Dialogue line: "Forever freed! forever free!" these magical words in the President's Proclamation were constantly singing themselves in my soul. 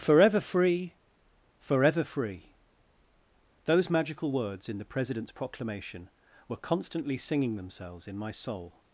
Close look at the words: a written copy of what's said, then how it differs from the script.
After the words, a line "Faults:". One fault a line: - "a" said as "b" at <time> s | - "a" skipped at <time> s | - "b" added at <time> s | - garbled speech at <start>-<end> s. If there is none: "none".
"Forever free! forever free!" those magical words in the President's Proclamation were constantly singing themselves in my soul.
Faults:
- "freed" said as "free" at 0.4 s
- "these" said as "those" at 3.6 s